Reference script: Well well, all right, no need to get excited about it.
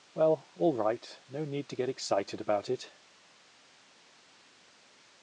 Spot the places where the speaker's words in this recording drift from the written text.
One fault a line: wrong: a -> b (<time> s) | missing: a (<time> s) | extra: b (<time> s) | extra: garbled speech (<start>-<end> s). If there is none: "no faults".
missing: well (0.5 s)